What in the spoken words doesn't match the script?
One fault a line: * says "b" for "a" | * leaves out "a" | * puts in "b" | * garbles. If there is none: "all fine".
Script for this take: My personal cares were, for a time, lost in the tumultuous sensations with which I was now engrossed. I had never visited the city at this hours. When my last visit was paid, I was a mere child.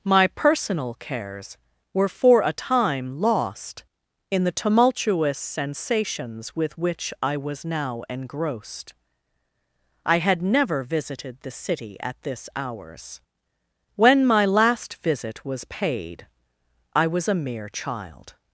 all fine